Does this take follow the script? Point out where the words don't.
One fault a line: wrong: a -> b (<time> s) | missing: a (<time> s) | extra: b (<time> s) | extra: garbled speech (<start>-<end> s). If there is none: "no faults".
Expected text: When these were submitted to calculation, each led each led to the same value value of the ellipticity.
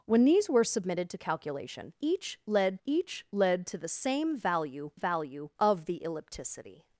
no faults